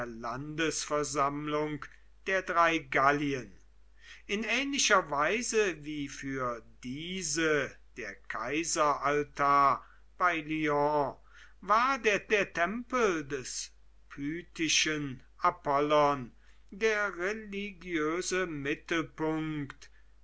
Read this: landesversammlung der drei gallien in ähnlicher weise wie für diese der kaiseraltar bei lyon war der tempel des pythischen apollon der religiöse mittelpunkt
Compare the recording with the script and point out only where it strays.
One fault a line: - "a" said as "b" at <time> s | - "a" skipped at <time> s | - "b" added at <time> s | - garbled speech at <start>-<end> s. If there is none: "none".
- "der" added at 12.3 s